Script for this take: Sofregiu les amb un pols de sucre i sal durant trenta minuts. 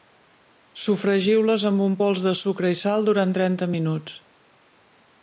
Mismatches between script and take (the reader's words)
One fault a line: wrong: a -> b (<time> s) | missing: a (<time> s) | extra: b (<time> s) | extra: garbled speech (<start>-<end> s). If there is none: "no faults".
no faults